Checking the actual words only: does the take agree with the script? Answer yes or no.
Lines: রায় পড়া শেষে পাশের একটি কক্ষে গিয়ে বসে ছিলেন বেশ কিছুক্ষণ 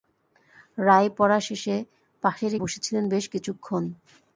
no